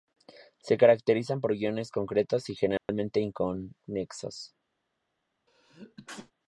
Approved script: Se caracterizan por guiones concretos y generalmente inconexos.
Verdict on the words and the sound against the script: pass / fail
fail